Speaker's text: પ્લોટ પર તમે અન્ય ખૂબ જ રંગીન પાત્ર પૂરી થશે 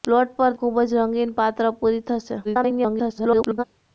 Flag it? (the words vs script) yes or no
yes